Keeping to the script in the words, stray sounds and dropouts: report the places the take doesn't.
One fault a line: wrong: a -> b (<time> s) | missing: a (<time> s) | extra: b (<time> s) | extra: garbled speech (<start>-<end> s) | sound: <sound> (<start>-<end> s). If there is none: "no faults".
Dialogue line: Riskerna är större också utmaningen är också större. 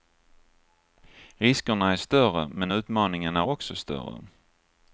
wrong: också -> men (2.5 s)